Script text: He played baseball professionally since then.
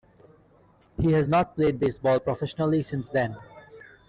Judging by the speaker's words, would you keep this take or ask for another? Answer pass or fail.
fail